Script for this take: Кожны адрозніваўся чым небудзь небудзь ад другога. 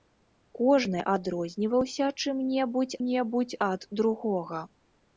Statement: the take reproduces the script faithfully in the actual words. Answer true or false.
true